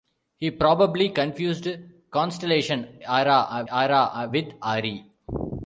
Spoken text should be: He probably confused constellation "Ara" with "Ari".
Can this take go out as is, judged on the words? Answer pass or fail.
fail